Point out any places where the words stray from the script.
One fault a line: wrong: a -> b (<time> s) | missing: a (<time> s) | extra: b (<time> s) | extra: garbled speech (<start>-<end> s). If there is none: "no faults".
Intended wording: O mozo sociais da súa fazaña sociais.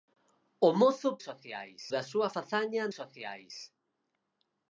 no faults